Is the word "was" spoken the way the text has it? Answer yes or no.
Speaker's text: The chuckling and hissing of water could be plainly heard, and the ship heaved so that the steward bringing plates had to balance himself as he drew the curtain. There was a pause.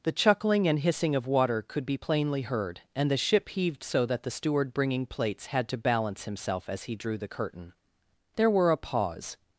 no